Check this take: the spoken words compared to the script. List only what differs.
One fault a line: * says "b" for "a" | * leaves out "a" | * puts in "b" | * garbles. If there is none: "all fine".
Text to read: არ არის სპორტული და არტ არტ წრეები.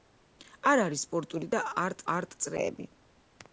all fine